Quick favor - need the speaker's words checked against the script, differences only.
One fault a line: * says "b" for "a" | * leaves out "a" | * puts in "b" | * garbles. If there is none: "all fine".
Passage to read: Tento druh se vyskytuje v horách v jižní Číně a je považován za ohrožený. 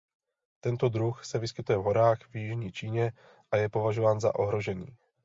all fine